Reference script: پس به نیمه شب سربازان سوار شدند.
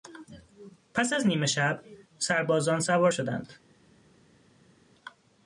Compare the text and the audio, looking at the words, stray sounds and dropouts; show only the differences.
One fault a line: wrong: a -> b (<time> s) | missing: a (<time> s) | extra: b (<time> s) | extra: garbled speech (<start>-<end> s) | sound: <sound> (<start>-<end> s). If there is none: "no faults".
wrong: به -> از (1.1 s)